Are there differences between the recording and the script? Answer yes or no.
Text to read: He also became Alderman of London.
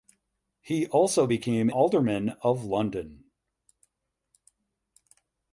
no